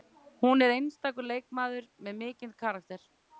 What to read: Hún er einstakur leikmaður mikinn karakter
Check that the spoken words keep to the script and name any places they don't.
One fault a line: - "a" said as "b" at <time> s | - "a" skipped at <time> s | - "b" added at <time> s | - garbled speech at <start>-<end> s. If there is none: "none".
- "með" added at 2.1 s